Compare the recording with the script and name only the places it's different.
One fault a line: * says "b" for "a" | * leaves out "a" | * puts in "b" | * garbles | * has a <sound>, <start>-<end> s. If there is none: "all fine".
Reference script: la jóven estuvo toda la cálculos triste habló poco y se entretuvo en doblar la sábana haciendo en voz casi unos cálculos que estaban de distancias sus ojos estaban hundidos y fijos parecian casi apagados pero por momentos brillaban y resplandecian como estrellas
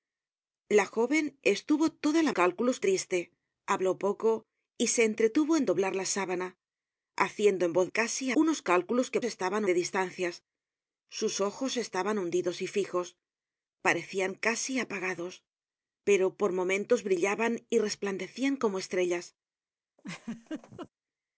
* has a laugh, 20.0-20.9 s